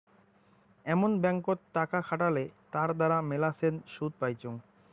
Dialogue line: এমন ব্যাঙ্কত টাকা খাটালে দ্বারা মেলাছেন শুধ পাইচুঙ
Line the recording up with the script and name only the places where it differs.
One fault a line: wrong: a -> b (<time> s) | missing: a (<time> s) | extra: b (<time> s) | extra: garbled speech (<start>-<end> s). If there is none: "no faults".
extra: তার (2.7 s)